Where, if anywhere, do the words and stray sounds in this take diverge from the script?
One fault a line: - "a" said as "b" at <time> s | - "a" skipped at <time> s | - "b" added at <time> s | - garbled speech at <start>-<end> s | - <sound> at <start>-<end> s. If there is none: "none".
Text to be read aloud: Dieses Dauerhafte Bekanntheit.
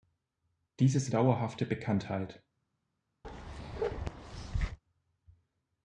- bark at 3.2-4.8 s